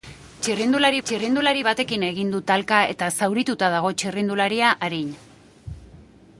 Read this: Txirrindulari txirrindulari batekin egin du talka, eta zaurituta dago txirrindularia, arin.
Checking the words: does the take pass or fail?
pass